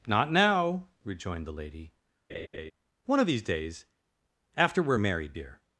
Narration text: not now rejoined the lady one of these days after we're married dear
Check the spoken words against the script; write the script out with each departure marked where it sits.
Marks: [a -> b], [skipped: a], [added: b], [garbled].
not now rejoined the lady one of these days after we're married dear